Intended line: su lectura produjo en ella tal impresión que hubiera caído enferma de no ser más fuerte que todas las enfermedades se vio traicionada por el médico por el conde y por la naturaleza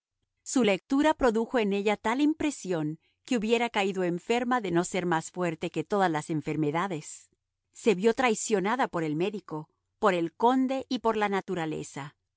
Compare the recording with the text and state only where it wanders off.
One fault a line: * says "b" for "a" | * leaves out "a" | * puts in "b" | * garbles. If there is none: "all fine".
all fine